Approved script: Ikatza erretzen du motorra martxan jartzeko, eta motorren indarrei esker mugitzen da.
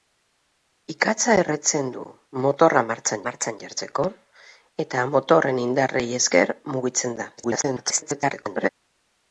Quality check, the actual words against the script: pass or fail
fail